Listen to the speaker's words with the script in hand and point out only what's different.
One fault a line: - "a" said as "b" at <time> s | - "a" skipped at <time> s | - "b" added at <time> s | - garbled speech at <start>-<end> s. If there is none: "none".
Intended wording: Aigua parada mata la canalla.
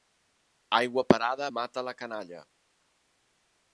none